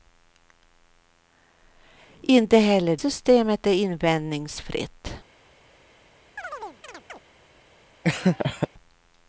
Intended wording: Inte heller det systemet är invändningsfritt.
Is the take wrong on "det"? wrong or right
wrong